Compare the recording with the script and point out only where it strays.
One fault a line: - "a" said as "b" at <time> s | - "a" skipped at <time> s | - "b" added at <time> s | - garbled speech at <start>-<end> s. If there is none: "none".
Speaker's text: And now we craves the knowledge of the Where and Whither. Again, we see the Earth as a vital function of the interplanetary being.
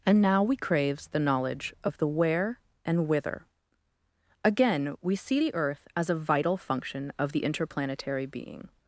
none